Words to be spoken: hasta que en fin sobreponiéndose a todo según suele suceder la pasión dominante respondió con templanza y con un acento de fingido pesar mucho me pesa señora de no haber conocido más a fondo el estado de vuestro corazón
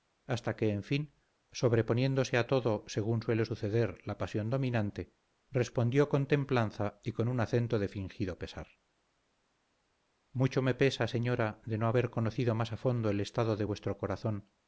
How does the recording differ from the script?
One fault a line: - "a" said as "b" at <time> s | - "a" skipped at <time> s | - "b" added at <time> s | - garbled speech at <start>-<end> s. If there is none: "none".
none